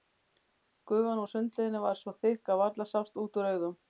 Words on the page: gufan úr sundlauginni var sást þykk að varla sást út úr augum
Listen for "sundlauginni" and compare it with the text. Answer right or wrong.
right